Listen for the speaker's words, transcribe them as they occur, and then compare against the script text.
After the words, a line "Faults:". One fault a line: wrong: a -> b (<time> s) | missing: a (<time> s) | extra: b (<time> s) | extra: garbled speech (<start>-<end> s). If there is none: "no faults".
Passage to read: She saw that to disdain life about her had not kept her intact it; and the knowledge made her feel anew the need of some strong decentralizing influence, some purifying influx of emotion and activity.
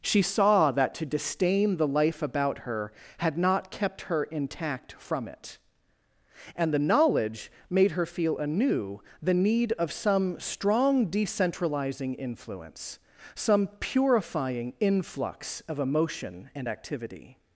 She saw that to disdain the life about her had not kept her intact from it; and the knowledge made her feel anew the need of some strong decentralizing influence, some purifying influx of emotion and activity.
Faults:
extra: the (1.8 s)
extra: from (5.0 s)